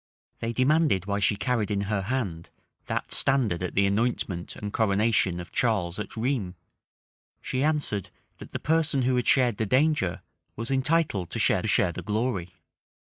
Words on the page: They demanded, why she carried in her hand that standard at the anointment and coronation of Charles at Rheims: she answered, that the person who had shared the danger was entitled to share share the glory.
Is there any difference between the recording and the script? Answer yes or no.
no